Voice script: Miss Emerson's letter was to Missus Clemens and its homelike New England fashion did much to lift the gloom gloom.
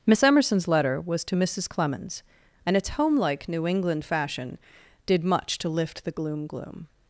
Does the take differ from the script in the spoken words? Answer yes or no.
no